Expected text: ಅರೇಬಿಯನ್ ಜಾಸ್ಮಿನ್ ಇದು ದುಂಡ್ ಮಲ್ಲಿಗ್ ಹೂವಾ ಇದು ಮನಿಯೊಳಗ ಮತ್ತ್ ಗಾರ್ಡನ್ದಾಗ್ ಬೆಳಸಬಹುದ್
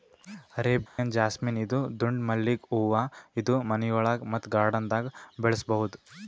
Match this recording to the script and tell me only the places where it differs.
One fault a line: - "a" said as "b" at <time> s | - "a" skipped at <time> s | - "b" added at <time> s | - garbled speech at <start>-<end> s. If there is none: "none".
none